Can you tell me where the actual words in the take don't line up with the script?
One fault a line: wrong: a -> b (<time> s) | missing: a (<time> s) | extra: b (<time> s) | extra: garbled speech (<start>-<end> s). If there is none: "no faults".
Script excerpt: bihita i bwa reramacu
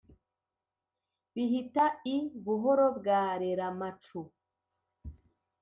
extra: buhoro (2.4 s)